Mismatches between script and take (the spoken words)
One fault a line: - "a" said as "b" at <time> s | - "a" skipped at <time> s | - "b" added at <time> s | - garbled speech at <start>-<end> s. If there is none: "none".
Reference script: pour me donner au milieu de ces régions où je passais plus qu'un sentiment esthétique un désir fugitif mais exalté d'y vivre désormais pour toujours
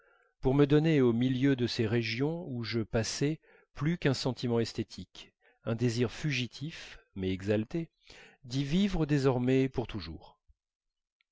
none